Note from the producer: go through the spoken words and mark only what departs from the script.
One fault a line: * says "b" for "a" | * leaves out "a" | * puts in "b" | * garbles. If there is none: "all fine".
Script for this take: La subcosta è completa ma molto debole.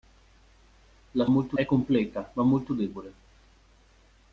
* says "molto" for "subcosta"